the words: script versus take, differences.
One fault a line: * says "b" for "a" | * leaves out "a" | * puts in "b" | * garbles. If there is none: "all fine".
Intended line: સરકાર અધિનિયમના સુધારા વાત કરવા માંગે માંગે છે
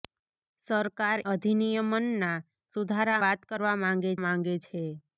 all fine